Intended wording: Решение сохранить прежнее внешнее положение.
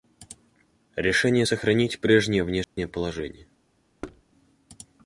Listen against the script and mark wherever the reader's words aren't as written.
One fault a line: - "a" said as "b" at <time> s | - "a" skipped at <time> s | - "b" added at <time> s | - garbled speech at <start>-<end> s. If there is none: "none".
none